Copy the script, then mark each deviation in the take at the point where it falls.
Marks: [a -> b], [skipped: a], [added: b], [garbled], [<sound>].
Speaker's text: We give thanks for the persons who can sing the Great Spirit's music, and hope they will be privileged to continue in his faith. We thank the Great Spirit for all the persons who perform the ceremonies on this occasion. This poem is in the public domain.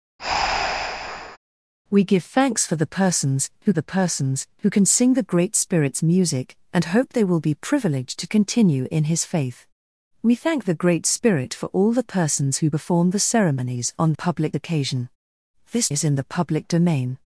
[breath] We give thanks for the persons who [added: the persons who] can sing the Great Spirit's music, and hope they will be privileged to continue in his faith. We thank the Great Spirit for all the persons who perform the ceremonies on [this -> public] occasion. This [skipped: poem] is in the public domain.